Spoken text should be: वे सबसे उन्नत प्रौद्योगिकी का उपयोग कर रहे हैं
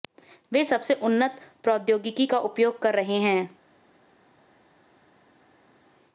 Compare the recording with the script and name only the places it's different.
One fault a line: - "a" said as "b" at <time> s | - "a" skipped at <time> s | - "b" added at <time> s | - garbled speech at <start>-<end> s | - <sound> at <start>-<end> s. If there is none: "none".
none